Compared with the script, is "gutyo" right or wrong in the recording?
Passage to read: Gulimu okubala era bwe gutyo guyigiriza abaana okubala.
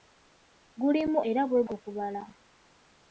wrong